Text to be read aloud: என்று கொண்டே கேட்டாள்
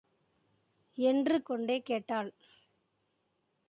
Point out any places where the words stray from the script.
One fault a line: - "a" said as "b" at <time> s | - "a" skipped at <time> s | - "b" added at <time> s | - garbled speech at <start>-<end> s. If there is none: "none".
none